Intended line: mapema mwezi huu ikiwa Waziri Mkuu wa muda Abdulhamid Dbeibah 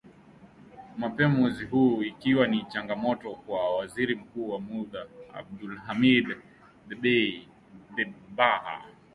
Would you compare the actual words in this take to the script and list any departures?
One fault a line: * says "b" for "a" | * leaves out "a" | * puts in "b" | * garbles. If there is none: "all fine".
* puts in "ni changamoto kwa"